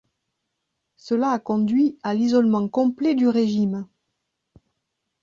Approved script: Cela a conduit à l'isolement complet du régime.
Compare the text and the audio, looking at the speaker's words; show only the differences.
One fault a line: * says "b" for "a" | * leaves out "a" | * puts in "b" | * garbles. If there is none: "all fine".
all fine